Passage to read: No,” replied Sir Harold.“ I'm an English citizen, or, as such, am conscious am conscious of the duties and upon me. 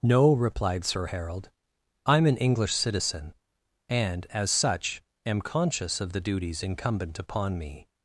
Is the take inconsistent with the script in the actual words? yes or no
yes